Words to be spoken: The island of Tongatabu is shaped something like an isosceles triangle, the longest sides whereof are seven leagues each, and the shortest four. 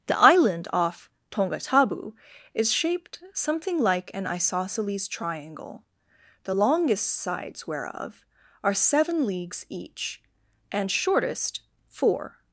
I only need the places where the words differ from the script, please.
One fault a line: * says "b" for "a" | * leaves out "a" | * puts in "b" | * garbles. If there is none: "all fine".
* says "off" for "of"
* leaves out "the"